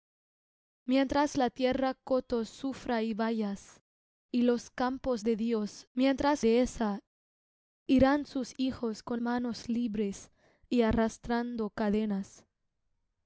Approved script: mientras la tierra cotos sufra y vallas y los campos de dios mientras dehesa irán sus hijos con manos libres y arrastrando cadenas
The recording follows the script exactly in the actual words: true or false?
true